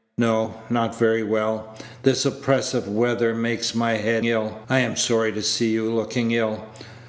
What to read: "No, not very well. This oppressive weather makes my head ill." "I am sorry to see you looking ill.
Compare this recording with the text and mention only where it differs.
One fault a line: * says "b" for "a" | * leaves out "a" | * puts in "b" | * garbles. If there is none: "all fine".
all fine